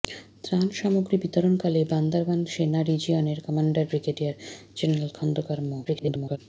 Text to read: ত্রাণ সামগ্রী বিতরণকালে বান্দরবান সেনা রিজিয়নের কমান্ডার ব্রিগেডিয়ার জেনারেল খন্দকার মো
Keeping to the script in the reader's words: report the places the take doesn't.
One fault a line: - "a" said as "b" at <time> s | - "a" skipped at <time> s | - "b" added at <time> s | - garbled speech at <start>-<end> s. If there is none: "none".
- garbled speech at 5.8-6.4 s